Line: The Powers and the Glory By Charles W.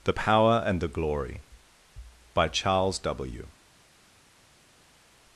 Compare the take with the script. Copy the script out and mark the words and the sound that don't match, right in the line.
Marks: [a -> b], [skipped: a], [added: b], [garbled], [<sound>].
The [Powers -> Power] and the Glory By Charles W.